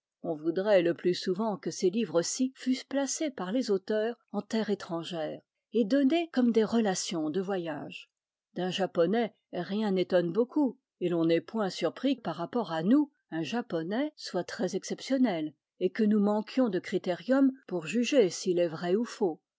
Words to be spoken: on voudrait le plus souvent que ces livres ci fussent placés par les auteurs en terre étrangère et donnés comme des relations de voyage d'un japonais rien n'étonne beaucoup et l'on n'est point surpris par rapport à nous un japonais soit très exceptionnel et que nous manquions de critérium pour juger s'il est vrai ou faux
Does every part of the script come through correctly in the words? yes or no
yes